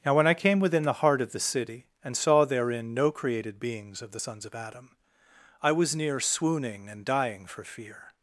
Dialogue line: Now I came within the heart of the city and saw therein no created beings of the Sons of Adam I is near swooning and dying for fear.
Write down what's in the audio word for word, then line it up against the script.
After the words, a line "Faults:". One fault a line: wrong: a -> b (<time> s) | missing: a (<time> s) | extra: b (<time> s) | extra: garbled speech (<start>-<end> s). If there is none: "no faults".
Now when I came within the heart of the city and saw therein no created beings of the Sons of Adam I was near swooning and dying for fear.
Faults:
extra: when (0.1 s)
wrong: is -> was (5.7 s)